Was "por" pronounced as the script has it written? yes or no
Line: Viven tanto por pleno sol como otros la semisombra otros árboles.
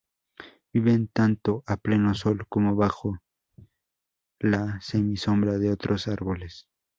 no